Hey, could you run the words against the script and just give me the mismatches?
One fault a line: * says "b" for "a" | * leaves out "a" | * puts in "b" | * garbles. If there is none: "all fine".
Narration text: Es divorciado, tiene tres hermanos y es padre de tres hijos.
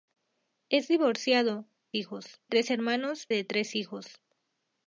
* says "hijos" for "tiene"
* leaves out "y es padre"